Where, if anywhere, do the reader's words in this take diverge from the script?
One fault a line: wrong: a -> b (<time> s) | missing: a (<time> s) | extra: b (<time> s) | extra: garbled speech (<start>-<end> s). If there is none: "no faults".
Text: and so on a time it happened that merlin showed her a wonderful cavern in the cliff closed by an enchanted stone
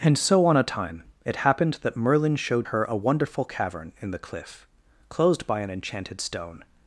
no faults